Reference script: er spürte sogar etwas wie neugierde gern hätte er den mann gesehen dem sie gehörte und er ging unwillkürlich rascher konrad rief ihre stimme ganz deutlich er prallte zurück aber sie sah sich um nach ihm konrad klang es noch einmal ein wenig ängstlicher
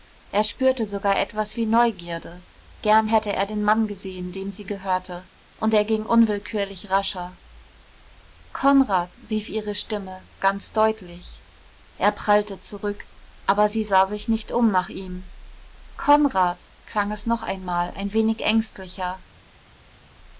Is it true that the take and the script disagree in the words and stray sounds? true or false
true